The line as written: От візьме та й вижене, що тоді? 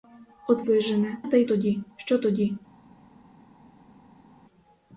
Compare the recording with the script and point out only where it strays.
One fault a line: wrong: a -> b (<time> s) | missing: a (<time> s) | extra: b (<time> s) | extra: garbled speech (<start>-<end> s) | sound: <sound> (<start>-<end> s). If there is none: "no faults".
wrong: візьме -> вижене (0.6 s)
wrong: вижене -> тоді (1.4 s)